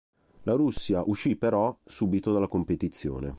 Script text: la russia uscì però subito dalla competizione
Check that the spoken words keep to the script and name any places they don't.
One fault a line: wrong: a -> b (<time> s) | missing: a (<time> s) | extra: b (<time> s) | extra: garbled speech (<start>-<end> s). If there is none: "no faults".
no faults